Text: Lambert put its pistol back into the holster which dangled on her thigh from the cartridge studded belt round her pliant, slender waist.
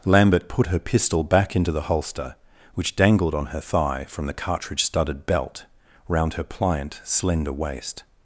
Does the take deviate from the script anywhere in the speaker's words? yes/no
yes